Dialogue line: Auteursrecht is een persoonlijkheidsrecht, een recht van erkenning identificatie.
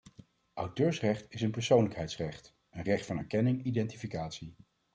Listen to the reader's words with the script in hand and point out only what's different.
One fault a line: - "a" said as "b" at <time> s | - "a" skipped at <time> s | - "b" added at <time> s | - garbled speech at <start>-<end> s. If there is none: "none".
none